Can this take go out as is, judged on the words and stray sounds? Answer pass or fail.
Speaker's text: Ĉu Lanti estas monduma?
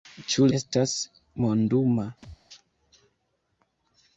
fail